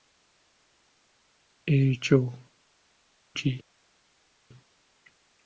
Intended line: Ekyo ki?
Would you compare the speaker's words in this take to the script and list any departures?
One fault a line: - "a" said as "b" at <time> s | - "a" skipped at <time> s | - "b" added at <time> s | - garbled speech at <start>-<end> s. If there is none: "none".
none